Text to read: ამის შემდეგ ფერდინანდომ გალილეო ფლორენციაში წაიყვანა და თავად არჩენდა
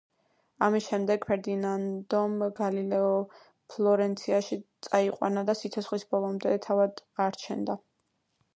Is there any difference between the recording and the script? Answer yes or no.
yes